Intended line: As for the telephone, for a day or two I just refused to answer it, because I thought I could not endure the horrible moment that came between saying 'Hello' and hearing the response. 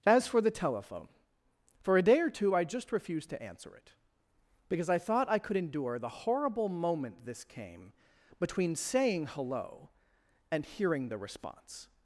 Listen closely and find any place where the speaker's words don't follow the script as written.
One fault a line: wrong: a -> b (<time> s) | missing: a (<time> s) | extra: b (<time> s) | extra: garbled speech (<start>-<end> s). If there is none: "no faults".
missing: not (5.6 s)
wrong: that -> this (7.2 s)